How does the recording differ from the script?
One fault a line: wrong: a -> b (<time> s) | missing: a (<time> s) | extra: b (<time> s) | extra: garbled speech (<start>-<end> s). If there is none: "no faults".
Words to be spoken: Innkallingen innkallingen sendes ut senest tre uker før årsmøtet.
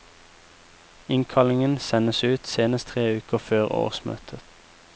missing: innkallingen (1.8 s)